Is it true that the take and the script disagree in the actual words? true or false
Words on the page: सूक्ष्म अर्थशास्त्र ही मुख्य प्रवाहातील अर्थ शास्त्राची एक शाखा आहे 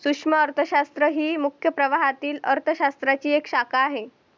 false